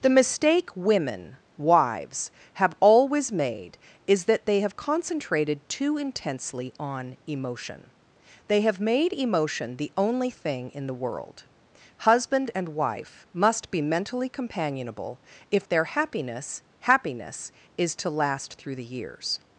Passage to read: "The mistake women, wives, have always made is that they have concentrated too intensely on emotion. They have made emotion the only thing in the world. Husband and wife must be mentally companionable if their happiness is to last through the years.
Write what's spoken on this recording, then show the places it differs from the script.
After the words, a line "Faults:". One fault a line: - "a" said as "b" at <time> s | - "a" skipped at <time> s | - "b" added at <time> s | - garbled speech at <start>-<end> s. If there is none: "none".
"The mistake women, wives, have always made is that they have concentrated too intensely on emotion. They have made emotion the only thing in the world. Husband and wife must be mentally companionable if their happiness happiness is to last through the years.
Faults:
- "happiness" added at 16.8 s